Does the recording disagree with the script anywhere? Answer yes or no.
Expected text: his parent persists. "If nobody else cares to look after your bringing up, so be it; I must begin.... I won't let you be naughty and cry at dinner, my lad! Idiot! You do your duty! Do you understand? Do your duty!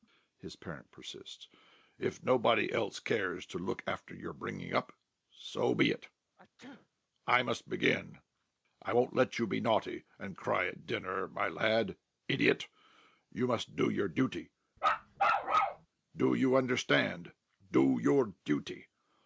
yes